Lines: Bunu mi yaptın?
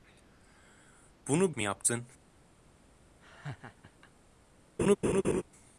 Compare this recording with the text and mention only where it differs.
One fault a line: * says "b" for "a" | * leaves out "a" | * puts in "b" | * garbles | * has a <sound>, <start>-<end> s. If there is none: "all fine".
* has a laugh, 3.2-4.1 s
* has a laugh, 4.8-5.4 s